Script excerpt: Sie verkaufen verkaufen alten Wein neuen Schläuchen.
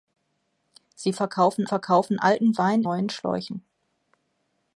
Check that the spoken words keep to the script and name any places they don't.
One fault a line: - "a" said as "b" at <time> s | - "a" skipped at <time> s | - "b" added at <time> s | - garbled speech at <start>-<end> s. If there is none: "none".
none